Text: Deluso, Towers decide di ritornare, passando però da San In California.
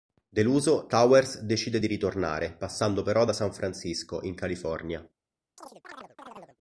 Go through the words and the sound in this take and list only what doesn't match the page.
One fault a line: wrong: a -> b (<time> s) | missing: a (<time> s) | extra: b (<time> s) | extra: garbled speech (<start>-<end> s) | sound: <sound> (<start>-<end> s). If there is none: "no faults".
extra: Francisco (3.5 s)
sound: chirp (5.6-6.6 s)